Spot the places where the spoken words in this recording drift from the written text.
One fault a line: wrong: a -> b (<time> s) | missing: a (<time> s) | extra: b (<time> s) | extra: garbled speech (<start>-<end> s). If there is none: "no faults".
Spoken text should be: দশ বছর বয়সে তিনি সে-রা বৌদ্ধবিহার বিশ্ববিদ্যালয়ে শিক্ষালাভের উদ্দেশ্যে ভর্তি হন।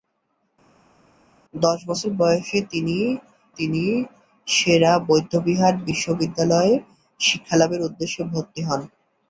extra: তিনি (3.6 s)